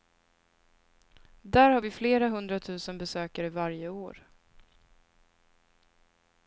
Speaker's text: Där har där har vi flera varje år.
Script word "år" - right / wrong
right